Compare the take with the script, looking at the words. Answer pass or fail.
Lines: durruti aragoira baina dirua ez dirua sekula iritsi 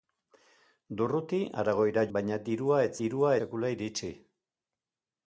pass